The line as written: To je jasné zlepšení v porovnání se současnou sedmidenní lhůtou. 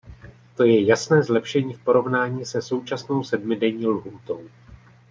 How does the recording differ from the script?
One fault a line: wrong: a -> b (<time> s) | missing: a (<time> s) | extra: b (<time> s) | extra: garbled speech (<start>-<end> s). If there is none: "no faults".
no faults